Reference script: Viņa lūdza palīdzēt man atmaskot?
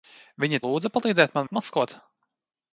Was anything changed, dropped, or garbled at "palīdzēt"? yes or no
no